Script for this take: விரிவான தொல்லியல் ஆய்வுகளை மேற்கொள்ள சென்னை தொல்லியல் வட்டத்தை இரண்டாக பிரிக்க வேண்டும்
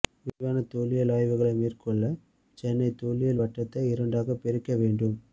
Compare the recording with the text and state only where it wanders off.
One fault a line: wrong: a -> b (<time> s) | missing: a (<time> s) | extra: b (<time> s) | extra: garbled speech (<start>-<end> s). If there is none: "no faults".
no faults